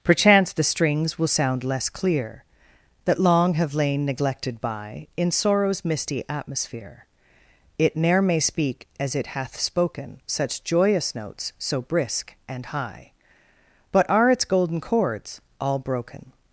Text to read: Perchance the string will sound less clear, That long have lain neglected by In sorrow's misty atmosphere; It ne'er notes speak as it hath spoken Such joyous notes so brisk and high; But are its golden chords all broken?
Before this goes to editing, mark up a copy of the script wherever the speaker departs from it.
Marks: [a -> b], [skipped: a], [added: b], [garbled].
Perchance the [string -> strings] will sound less clear, That long have lain neglected by In sorrow's misty atmosphere; It ne'er [notes -> may] speak as it hath spoken Such joyous notes so brisk and high; But are its golden chords all broken?